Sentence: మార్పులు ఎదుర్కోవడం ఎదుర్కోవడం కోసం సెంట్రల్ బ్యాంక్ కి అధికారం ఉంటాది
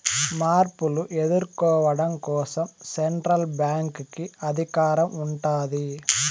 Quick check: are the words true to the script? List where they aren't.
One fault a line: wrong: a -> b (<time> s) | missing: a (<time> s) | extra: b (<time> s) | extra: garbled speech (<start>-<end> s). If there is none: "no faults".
missing: ఎదుర్కోవడం (2.1 s)